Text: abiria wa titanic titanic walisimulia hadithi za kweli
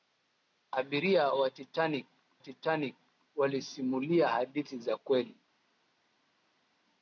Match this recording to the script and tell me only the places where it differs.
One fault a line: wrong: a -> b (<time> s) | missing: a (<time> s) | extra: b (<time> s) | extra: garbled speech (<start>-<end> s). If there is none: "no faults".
no faults